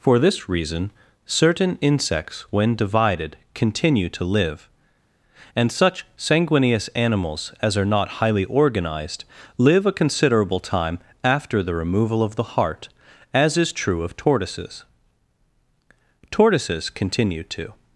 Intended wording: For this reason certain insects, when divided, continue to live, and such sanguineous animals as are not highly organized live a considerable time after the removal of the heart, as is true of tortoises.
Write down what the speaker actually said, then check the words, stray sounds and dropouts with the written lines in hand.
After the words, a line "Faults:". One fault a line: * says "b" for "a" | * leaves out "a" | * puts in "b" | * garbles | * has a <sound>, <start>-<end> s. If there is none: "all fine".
For this reason certain insects, when divided, continue to live, and such sanguineous animals as are not highly organized live a considerable time after the removal of the heart, as is true of tortoises. Tortoises continue to
Faults:
* puts in "Tortoises continue to"